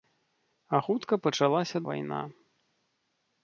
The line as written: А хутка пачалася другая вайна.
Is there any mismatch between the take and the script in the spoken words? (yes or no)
yes